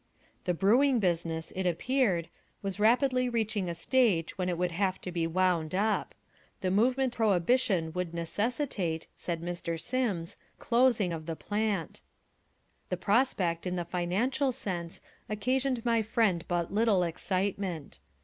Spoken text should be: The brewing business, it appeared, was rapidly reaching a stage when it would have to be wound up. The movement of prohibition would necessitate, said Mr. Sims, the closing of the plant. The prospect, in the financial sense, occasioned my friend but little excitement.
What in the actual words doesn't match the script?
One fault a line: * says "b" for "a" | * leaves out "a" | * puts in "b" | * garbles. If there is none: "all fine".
* leaves out "of"
* leaves out "the"